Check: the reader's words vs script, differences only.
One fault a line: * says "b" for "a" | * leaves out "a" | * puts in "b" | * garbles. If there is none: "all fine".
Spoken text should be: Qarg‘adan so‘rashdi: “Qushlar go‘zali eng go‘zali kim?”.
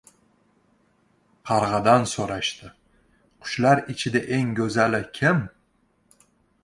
* says "ichida" for "go‘zali"